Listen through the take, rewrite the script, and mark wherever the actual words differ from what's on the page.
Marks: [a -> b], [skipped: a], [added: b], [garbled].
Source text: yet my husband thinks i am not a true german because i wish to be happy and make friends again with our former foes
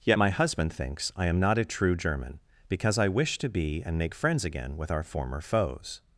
yet my husband thinks i am not a true german because i wish to be [skipped: happy] and make friends again with our former foes